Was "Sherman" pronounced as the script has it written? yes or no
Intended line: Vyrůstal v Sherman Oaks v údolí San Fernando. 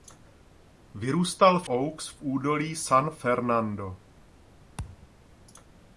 no